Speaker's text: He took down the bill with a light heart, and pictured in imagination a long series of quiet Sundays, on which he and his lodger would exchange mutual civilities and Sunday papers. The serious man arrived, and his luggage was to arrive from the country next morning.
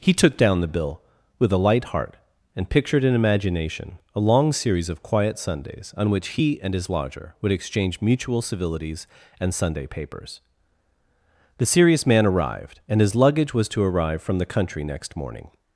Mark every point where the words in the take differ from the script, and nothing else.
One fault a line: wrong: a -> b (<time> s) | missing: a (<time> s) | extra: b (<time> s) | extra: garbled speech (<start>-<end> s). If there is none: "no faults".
no faults